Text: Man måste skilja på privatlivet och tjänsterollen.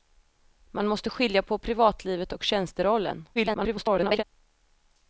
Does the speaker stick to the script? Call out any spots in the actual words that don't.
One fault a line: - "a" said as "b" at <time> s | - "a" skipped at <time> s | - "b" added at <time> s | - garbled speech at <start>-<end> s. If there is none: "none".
- garbled speech at 3.3-4.2 s